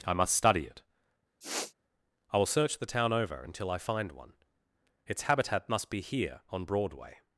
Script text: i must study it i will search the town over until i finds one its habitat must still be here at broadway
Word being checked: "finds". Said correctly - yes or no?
no